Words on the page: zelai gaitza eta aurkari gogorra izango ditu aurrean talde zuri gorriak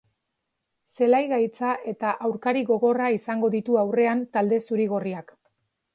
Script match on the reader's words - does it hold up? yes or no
yes